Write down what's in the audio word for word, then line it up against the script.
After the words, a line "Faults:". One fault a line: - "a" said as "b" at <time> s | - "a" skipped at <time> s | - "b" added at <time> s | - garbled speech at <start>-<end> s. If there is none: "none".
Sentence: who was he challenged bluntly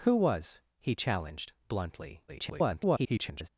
who was he challenged bluntly [garbled]
Faults:
- garbled speech at 2.3-3.5 s